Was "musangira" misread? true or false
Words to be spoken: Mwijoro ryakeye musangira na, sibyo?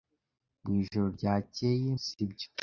true